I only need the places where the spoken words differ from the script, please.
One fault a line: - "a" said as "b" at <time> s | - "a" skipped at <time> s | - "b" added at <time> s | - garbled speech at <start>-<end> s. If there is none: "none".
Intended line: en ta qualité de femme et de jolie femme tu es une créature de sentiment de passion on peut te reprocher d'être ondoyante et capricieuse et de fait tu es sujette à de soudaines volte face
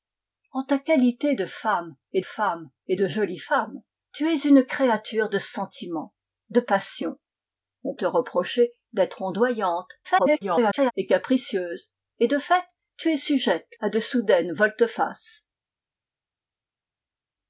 - "femme et" added at 2.2 s
- "peut" skipped at 7.9 s
- garbled speech at 10.0-10.9 s